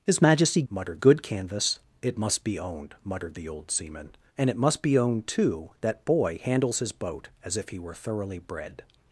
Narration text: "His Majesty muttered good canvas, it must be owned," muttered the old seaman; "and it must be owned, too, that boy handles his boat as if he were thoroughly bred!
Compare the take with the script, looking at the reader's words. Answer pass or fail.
pass